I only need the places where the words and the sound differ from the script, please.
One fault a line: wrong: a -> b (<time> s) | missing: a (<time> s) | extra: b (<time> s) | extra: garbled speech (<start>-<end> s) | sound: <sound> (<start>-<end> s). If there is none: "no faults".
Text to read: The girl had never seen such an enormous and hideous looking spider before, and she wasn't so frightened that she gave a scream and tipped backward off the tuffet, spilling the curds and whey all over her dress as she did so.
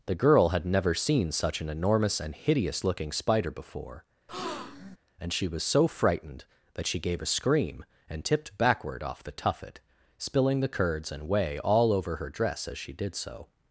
sound: breath (4.3-5.0 s)
wrong: wasn't -> was (5.5 s)